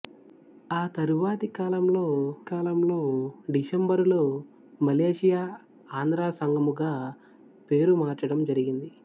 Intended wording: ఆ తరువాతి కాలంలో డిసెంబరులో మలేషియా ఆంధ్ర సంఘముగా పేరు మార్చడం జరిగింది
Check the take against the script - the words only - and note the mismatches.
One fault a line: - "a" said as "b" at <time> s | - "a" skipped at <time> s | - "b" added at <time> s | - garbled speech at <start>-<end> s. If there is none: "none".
- "కాలంలో" added at 2.5 s